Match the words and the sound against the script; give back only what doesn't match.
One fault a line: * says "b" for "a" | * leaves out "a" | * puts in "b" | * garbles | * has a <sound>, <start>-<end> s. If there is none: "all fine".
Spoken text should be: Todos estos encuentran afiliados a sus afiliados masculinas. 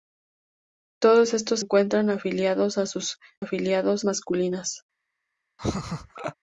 * has a laugh, 5.6-6.3 s